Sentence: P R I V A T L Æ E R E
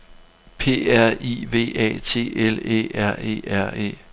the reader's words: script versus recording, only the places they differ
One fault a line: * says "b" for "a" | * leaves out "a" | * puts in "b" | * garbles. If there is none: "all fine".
* puts in "R"